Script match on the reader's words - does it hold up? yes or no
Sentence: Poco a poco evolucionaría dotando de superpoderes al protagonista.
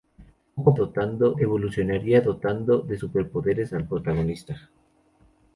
no